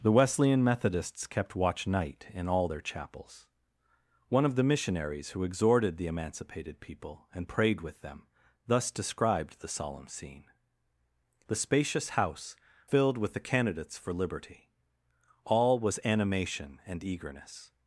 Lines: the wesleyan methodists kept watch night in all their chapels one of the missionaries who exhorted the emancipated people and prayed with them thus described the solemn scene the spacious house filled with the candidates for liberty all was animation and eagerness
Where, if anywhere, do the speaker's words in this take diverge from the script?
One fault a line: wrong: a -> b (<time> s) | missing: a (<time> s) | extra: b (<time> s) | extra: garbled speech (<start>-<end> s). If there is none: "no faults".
no faults